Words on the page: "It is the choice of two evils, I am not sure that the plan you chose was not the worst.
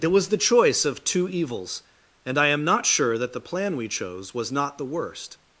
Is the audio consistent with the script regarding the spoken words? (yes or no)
no